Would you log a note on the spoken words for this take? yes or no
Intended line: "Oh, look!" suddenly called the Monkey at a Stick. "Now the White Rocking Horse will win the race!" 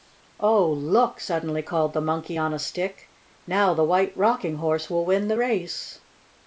yes